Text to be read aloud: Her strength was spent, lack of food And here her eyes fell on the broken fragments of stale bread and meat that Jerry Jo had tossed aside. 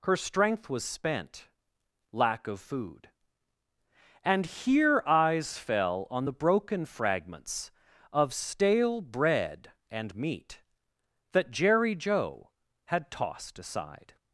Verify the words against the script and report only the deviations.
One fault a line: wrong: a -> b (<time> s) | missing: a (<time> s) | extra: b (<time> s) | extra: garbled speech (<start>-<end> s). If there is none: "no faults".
missing: her (5.0 s)